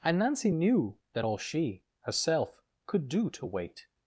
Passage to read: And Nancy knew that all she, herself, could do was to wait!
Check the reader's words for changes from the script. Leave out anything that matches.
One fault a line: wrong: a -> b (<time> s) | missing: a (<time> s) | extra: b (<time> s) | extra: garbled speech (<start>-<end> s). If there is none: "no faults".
missing: was (3.3 s)